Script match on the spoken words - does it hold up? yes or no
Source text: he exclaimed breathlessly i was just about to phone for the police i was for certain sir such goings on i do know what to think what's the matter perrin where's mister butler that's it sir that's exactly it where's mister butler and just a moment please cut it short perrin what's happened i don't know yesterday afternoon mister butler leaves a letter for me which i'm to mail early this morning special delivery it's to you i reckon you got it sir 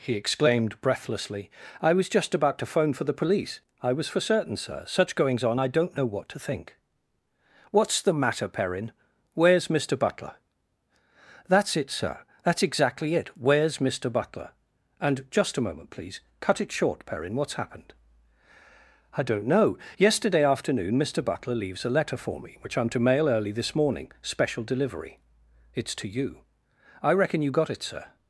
no